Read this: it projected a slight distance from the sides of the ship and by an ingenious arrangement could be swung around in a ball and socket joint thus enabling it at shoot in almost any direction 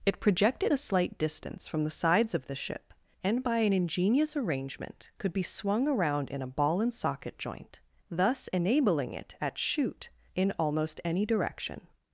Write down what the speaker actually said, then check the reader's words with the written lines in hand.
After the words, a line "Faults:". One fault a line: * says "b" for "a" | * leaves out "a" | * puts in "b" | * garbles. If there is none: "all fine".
it projected a slight distance from the sides of the ship and by an ingenious arrangement could be swung around in a ball and socket joint thus enabling it at shoot in almost any direction
Faults:
all fine